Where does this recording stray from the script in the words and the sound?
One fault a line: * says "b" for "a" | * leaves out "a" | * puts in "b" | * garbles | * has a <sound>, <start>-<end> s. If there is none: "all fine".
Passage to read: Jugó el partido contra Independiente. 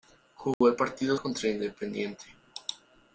* has a dropout, 0.5-0.6 s